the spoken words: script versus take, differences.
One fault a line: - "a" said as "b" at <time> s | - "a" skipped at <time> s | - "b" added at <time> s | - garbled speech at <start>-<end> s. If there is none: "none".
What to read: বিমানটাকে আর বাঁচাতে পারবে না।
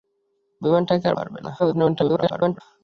- "বাঁচাতে" skipped at 1.1 s
- garbled speech at 1.6-2.6 s